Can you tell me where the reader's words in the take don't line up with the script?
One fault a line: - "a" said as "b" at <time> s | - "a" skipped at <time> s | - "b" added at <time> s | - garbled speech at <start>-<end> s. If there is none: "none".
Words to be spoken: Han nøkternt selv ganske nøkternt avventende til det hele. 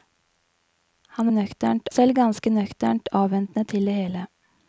none